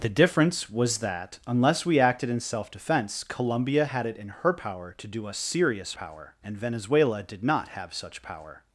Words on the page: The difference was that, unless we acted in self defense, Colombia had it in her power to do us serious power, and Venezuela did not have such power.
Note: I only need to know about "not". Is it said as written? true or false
true